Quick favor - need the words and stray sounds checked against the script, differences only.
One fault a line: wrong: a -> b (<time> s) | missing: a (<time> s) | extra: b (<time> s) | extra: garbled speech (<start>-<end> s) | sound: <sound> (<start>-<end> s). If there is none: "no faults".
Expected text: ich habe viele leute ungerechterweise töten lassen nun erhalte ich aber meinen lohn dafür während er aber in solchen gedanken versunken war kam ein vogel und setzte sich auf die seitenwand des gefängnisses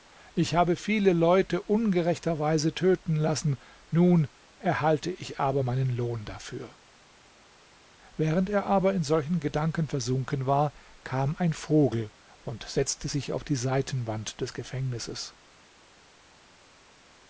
no faults